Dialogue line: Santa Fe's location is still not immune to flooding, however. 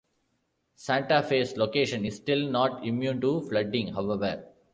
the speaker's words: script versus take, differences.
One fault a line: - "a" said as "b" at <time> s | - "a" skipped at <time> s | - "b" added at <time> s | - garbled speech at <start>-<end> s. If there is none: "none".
none